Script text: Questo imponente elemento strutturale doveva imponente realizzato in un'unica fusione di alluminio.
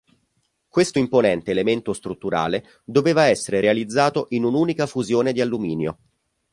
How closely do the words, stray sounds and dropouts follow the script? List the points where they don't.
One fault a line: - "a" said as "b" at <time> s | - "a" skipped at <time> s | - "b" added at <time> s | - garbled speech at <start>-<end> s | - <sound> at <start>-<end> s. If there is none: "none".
- "imponente" said as "essere" at 3.2 s